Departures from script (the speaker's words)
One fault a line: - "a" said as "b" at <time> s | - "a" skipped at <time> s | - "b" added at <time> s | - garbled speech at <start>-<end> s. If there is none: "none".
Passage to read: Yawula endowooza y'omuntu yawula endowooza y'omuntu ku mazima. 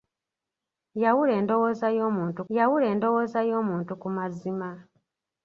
none